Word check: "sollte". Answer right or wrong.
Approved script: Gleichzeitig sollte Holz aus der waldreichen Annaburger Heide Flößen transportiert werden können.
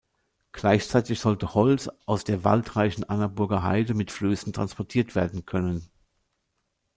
right